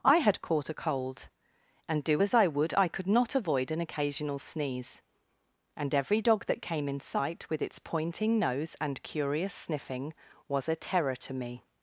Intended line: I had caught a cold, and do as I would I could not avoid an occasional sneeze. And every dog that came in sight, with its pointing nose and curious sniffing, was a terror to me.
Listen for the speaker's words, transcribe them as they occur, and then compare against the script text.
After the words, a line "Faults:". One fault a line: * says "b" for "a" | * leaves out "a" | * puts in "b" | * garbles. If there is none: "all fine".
I had caught a cold, and do as I would I could not avoid an occasional sneeze. And every dog that came in sight, with its pointing nose and curious sniffing, was a terror to me.
Faults:
all fine